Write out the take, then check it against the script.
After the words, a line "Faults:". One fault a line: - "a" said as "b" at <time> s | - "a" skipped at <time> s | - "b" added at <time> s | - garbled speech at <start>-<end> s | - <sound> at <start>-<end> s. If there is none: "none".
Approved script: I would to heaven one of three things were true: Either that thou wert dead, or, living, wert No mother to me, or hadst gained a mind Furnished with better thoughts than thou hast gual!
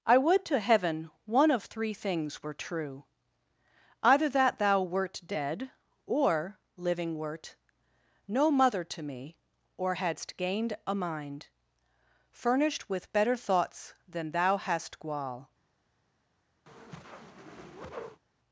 I would to heaven one of three things were true: Either that thou wert dead, or, living, wert No mother to me, or hadst gained a mind Furnished with better thoughts than thou hast gual!
Faults:
- whoosh at 16.7-18.2 s